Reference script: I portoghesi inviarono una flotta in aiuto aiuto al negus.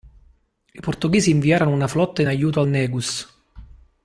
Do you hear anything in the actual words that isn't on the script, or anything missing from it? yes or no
yes